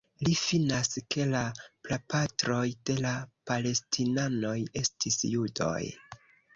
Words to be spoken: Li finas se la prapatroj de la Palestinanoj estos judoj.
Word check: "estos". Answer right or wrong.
wrong